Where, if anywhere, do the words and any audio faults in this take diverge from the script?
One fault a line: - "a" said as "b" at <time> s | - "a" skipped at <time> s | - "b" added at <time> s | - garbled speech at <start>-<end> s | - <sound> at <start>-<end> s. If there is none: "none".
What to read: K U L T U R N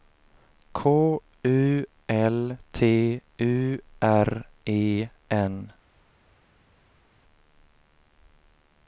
- "E" added at 4.6 s